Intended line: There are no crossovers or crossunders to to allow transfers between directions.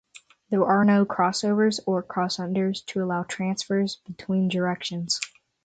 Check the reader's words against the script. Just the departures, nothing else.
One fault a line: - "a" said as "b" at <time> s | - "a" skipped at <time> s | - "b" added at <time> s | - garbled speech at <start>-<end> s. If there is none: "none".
- "to" skipped at 3.0 s